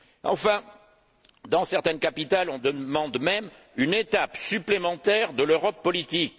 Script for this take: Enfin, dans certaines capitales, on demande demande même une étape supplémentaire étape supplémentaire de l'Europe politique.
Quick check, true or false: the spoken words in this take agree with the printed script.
false